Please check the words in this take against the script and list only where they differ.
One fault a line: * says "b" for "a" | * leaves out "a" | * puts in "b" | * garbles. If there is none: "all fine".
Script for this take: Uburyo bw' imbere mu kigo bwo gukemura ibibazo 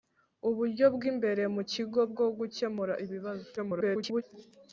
* garbles